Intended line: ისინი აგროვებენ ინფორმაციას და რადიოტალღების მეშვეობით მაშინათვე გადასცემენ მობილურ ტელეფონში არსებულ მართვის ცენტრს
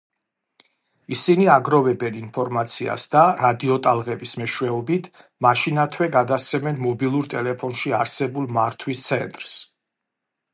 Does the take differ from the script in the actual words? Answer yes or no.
no